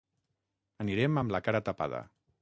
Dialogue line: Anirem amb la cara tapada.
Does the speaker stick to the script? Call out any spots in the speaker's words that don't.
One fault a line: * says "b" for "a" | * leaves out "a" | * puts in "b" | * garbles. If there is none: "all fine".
all fine